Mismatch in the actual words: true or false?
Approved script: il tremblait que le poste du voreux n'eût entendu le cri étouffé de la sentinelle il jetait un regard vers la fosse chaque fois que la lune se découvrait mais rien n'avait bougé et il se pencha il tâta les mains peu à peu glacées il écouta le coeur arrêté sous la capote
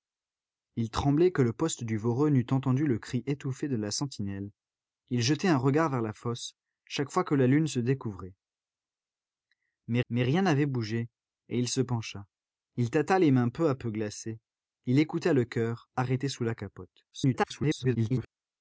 true